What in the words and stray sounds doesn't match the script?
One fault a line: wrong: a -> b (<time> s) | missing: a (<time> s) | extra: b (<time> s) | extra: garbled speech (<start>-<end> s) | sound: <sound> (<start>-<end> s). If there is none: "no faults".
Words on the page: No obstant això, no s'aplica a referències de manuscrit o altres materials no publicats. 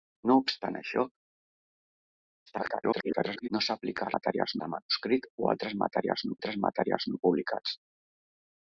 extra: garbled speech (2.5-3.5 s)
wrong: referències -> materials (4.2 s)
extra: altres materials no (6.4 s)